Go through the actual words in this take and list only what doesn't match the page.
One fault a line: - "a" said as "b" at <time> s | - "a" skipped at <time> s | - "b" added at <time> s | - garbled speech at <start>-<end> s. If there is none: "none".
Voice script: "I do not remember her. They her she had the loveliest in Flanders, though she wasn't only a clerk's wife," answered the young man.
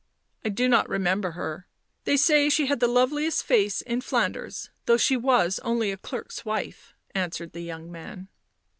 - "her" said as "say" at 2.2 s
- "face" added at 3.4 s
- "wasn't" said as "was" at 5.2 s